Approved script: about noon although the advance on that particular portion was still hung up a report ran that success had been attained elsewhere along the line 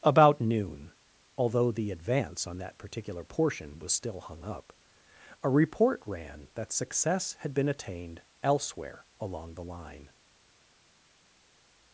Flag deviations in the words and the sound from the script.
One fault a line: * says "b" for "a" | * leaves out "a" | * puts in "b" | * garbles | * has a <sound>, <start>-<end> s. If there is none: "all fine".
all fine